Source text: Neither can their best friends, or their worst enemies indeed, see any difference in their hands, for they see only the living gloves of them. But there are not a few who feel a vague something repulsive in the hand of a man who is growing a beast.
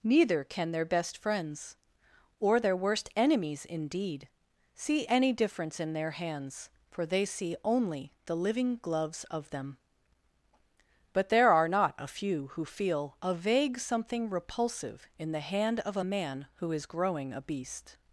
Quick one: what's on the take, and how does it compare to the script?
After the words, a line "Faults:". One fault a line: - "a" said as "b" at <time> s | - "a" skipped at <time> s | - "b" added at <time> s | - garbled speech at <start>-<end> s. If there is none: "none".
Neither can their best friends, or their worst enemies indeed, see any difference in their hands, for they see only the living gloves of them. But there are not a few who feel a vague something repulsive in the hand of a man who is growing a beast.
Faults:
none